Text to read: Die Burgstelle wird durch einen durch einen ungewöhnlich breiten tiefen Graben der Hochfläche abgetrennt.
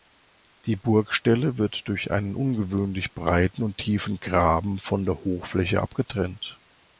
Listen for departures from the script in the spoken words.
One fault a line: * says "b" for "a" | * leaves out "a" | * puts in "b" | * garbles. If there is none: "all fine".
* leaves out "durch einen"
* puts in "und"
* puts in "von"